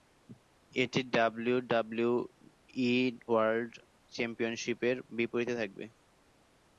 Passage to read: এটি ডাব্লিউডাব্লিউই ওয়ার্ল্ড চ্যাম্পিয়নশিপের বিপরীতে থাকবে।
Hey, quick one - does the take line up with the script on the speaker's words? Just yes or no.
yes